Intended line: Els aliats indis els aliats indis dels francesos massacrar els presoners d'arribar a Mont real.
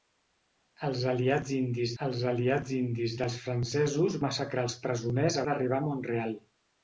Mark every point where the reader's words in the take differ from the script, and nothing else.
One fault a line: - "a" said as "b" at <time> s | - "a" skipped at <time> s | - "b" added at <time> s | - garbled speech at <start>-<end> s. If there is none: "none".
none